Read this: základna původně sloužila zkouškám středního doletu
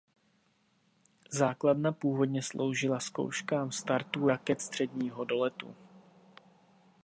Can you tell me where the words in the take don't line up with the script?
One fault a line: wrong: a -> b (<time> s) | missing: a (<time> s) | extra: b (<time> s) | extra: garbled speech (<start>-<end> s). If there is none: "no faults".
extra: startů raket (3.7 s)